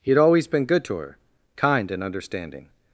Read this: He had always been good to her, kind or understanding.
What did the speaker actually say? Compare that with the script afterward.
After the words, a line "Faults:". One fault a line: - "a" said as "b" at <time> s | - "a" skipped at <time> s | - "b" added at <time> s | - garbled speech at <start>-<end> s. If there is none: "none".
He had always been good to her, kind and understanding.
Faults:
- "or" said as "and" at 1.9 s